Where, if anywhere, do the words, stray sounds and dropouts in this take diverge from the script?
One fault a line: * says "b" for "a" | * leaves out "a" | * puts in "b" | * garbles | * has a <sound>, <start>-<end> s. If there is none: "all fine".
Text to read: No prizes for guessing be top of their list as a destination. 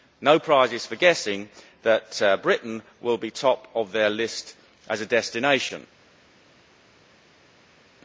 * puts in "that Britain will"